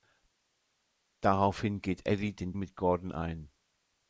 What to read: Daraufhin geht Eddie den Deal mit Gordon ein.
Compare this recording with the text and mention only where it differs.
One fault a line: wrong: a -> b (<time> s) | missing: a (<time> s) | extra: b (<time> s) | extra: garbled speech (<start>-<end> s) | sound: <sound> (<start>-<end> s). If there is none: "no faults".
missing: Deal (2.5 s)